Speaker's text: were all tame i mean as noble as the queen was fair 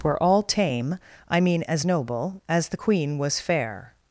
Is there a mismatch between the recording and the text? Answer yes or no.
no